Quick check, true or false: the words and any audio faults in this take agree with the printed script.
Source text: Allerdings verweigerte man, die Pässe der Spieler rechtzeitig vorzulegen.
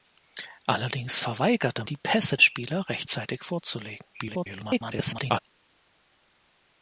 false